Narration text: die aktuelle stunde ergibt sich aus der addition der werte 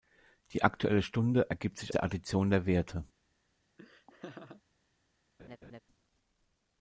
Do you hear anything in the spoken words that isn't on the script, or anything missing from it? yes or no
yes